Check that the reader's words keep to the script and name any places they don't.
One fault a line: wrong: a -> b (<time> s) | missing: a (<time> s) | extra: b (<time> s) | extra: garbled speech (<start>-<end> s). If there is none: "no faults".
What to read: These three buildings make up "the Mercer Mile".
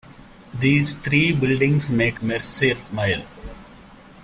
missing: up the (2.2 s)